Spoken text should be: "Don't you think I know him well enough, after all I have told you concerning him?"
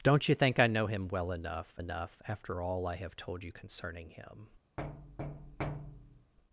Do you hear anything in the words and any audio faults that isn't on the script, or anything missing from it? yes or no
yes